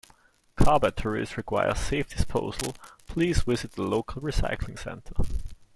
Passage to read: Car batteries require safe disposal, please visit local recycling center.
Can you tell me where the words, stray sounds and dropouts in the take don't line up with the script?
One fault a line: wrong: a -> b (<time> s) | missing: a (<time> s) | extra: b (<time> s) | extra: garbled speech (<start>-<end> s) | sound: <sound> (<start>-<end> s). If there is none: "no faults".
extra: the (3.7 s)